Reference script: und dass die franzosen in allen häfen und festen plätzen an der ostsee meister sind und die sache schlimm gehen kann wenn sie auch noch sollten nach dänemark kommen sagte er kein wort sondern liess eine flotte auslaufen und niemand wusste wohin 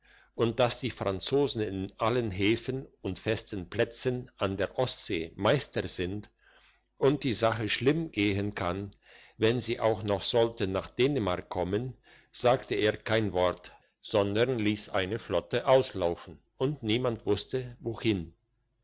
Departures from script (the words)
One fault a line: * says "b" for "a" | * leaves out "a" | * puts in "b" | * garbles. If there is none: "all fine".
all fine